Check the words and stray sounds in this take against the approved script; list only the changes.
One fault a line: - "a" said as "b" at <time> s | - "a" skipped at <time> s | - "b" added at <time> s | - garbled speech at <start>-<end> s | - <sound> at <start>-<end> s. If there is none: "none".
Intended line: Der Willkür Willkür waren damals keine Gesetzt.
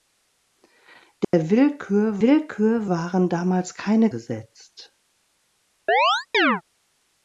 - dropout at 1.2-1.3 s
- chirp at 5.9-6.6 s